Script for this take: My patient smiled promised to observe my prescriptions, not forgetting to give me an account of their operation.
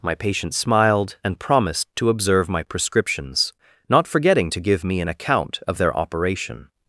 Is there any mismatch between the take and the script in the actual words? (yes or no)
yes